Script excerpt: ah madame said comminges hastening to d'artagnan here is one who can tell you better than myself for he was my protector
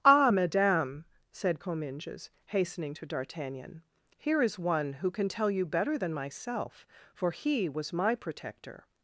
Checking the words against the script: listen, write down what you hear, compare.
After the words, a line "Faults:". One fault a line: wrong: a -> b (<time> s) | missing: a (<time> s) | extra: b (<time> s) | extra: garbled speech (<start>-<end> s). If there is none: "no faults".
ah madame said comminges hastening to d'artagnan here is one who can tell you better than myself for he was my protector
Faults:
no faults